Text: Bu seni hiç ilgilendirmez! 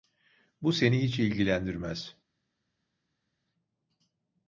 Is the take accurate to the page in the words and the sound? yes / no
yes